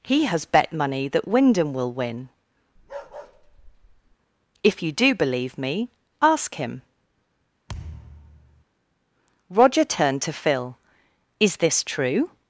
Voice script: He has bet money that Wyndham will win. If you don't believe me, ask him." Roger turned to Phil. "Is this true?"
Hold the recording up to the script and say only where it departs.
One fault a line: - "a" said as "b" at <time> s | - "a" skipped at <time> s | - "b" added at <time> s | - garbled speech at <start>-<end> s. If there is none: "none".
- "don't" said as "do" at 4.9 s